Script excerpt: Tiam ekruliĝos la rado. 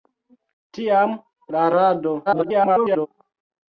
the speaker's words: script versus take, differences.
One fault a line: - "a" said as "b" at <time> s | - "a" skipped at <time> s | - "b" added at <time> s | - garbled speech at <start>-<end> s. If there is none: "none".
- "ekruliĝos" skipped at 1.1 s
- garbled speech at 2.3-3.1 s